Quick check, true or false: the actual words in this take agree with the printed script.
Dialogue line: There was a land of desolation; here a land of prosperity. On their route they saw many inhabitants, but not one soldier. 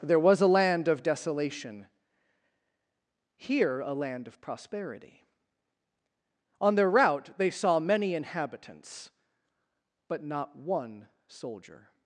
true